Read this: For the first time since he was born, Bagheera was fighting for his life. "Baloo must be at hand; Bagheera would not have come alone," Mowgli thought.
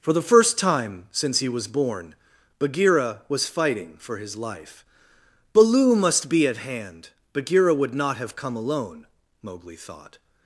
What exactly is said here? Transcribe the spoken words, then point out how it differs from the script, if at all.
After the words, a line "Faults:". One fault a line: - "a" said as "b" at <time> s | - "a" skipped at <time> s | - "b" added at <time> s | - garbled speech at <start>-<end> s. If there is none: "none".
For the first time since he was born, Bagheera was fighting for his life. "Baloo must be at hand; Bagheera would not have come alone," Mowgli thought.
Faults:
none